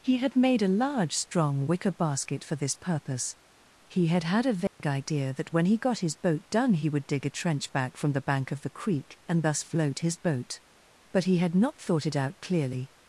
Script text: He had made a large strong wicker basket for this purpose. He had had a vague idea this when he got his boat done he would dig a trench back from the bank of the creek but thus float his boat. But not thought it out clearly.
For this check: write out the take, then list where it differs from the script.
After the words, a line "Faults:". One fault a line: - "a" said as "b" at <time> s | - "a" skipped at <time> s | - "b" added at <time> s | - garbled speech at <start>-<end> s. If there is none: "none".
He had made a large strong wicker basket for this purpose. He had had a vague idea that when he got his boat done he would dig a trench back from the bank of the creek and thus float his boat. But he had not thought it out clearly.
Faults:
- "this" said as "that" at 5.3 s
- "but" said as "and" at 9.3 s
- "he had" added at 11.3 s